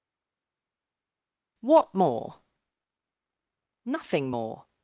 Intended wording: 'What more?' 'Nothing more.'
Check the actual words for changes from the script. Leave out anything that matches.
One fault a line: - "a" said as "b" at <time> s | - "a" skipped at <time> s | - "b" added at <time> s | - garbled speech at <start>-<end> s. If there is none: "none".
none